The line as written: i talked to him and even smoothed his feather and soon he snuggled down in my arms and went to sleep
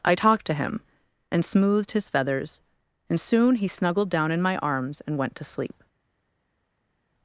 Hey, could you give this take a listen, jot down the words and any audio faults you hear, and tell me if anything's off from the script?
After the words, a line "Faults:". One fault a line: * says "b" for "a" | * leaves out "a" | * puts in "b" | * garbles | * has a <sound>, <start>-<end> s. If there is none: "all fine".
i talked to him and smoothed his feathers and soon he snuggled down in my arms and went to sleep
Faults:
* leaves out "even"
* says "feathers" for "feather"